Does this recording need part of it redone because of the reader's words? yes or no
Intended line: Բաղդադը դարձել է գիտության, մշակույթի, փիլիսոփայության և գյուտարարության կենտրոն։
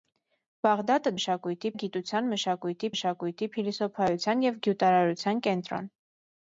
yes